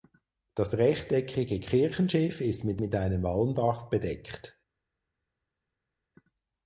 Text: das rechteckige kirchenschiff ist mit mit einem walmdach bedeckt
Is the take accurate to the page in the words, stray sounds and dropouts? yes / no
yes